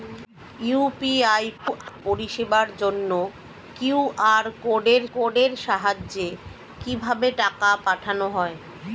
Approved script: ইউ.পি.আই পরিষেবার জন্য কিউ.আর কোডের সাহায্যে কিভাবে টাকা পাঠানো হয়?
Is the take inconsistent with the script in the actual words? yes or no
yes